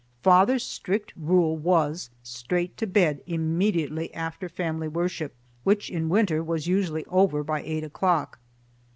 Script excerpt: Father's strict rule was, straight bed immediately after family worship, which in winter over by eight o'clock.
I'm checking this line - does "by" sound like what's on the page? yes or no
yes